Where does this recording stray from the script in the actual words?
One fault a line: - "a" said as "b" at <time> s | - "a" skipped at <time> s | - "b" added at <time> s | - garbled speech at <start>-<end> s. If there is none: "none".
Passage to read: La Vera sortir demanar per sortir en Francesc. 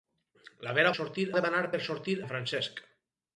none